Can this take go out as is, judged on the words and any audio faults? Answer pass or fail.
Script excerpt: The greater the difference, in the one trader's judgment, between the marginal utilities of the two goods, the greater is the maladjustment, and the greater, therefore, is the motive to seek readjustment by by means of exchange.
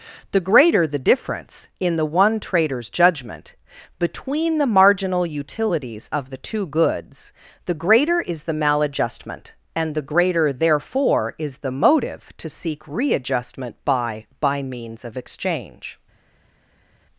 pass